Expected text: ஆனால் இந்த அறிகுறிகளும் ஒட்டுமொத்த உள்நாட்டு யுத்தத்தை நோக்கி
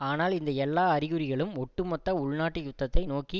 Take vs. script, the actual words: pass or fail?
fail